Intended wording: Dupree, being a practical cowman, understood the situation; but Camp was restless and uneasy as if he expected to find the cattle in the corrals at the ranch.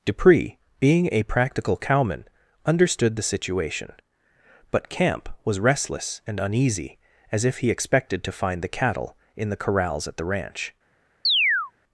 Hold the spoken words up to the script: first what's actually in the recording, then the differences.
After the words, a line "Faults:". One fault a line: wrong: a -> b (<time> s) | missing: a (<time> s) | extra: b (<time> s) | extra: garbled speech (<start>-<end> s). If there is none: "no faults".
Dupree, being a practical cowman, understood the situation; but Camp was restless and uneasy as if he expected to find the cattle in the corrals at the ranch.
Faults:
no faults